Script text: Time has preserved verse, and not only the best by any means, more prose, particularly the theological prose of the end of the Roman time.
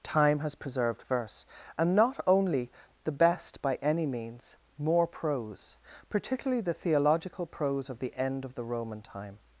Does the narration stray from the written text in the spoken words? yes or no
no